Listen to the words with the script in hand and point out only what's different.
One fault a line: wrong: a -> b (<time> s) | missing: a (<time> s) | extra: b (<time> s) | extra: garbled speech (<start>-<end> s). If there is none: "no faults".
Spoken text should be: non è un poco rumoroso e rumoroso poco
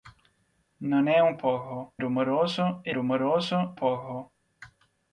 no faults